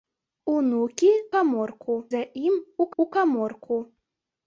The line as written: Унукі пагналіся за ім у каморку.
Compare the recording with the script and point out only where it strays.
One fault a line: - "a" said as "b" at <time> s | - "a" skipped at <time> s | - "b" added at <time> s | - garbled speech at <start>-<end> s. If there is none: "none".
- "пагналіся" said as "каморку" at 1.4 s
- "у" added at 3.0 s